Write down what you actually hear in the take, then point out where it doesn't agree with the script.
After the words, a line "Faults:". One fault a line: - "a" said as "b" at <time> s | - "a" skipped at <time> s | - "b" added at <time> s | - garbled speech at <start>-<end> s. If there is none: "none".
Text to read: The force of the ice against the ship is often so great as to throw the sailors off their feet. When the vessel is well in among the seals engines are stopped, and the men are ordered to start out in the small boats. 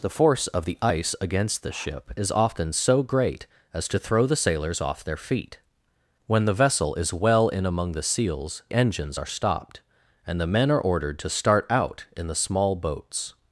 The force of the ice against the ship is often so great as to throw the sailors off their feet. When the vessel is well in among the seals engines are stopped, and the men are ordered to start out in the small boats.
Faults:
none